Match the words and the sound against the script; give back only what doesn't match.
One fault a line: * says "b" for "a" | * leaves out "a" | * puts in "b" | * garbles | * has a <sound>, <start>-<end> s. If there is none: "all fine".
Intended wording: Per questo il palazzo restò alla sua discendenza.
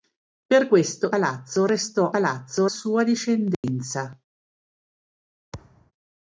* leaves out "il"
* says "palazzo" for "alla"
* has a dropout, 3.5-3.6 s
* has a thud, 5.5-5.9 s